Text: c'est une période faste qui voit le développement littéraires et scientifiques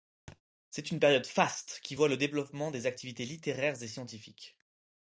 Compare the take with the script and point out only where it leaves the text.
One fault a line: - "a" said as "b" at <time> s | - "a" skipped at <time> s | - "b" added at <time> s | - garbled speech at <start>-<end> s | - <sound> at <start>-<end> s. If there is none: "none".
- thud at 0.3-0.4 s
- "des activités" added at 2.7 s